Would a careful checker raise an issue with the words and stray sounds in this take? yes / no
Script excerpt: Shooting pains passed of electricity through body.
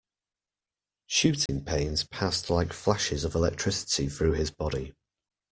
yes